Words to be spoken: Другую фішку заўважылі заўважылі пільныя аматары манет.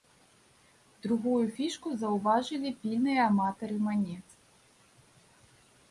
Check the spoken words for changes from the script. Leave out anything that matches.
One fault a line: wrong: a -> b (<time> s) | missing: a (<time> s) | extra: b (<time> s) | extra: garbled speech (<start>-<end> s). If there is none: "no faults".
missing: заўважылі (2.7 s)